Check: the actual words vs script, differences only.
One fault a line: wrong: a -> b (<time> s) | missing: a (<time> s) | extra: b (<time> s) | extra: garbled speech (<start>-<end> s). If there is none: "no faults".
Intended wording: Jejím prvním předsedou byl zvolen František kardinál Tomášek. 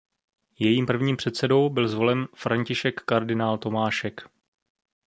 no faults